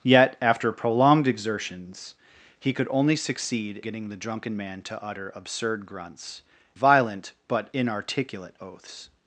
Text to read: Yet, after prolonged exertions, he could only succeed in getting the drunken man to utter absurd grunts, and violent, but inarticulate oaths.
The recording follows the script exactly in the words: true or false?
false